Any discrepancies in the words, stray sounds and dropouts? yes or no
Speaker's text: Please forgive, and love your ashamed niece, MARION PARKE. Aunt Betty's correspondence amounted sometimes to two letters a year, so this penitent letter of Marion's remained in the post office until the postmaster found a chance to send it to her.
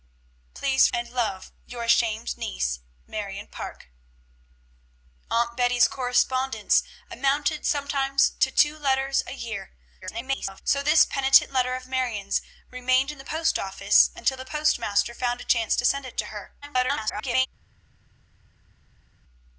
yes